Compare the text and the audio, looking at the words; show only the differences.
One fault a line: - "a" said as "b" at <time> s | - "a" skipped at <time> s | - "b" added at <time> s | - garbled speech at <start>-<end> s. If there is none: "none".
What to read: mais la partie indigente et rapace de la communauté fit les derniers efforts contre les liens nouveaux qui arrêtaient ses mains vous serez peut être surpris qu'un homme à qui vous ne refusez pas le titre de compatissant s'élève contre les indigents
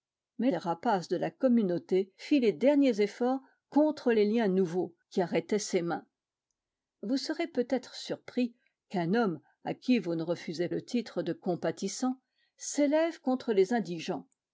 - "la partie indigente" skipped at 0.5 s
- "pas" skipped at 10.7 s